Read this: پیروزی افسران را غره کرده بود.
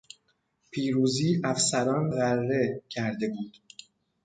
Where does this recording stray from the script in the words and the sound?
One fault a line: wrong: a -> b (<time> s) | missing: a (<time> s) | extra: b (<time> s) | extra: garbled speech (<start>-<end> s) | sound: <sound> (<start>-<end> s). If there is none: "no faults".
missing: را (2.1 s)